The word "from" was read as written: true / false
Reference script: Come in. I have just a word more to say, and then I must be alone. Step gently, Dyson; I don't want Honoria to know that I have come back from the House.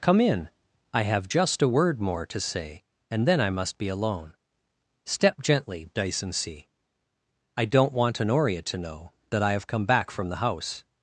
true